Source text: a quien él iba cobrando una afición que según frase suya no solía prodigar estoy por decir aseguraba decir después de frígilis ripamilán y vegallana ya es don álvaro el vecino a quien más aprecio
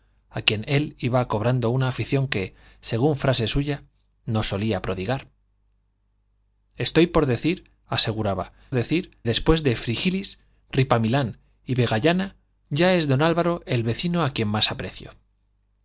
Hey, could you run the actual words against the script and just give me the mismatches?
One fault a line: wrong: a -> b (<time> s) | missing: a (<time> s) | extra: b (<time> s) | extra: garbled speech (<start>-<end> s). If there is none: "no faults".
no faults